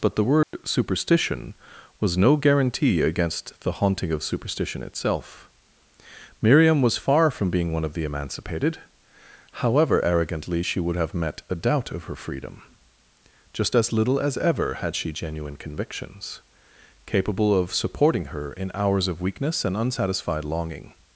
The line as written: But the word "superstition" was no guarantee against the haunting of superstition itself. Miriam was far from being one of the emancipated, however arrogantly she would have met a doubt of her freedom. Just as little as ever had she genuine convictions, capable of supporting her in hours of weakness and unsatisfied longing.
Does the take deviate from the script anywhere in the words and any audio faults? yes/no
yes